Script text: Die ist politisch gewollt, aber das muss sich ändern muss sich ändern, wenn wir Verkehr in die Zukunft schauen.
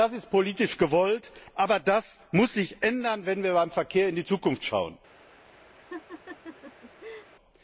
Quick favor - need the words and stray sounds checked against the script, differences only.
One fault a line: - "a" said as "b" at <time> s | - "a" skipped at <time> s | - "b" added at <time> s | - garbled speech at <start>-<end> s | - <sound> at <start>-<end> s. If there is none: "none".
- "Die" said as "Das" at 0.0 s
- "muss sich ändern" skipped at 3.3 s
- "beim" added at 3.5 s
- laugh at 5.7-7.3 s